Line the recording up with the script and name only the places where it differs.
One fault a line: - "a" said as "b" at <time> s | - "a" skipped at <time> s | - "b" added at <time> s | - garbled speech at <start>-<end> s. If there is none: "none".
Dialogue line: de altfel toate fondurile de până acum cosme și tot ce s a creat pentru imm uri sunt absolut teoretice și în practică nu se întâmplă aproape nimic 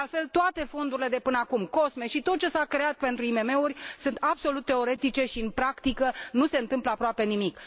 none